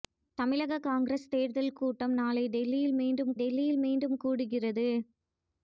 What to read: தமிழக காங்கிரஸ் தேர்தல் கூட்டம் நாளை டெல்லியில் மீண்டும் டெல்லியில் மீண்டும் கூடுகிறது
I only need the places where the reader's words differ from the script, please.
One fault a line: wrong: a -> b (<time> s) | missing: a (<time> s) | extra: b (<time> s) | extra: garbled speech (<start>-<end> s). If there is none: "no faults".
no faults